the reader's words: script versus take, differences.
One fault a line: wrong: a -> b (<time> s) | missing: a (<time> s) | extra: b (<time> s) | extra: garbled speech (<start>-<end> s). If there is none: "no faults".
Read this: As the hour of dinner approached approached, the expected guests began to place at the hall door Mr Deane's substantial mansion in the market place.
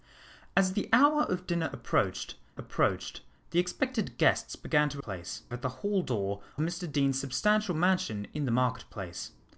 no faults